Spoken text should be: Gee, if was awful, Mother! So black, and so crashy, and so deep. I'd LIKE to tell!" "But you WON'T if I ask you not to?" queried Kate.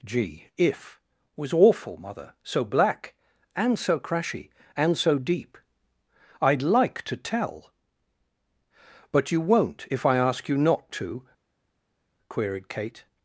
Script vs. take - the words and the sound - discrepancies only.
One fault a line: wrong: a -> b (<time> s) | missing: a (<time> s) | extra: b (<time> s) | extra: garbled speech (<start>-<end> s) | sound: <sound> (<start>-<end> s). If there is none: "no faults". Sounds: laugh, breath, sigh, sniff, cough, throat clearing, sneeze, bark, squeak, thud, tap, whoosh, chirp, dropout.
no faults